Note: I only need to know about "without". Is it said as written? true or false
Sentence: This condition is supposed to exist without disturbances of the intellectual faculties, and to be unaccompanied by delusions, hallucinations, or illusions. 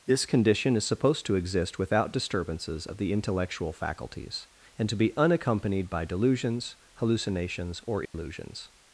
true